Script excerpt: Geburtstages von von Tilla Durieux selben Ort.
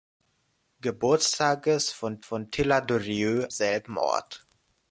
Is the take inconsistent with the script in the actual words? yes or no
no